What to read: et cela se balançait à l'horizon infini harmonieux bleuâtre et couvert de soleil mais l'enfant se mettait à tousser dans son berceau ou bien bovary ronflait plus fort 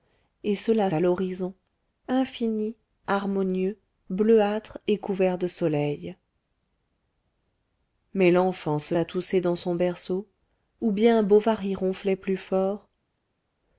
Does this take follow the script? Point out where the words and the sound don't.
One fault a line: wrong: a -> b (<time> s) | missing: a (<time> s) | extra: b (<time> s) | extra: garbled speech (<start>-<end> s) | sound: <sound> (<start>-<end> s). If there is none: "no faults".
missing: se balançait (0.9 s)
missing: mettait (8.9 s)